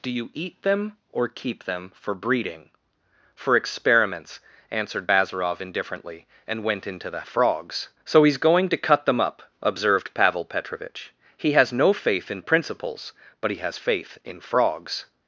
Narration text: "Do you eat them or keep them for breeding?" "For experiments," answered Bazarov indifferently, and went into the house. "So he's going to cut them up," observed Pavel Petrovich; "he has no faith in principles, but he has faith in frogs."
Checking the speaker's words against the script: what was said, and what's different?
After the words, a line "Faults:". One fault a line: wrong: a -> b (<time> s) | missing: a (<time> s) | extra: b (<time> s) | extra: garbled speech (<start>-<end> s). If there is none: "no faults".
"Do you eat them or keep them for breeding?" "For experiments," answered Bazarov indifferently, and went into the frogs. "So he's going to cut them up," observed Pavel Petrovich; "he has no faith in principles, but he has faith in frogs."
Faults:
wrong: house -> frogs (7.2 s)